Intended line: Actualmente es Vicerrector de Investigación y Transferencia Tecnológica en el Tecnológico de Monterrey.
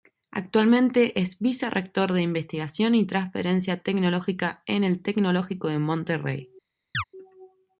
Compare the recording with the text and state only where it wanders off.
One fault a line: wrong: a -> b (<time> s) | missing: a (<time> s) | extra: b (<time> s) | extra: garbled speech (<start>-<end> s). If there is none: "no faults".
no faults